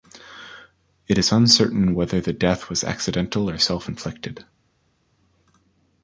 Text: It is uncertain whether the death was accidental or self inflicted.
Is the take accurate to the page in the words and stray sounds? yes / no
yes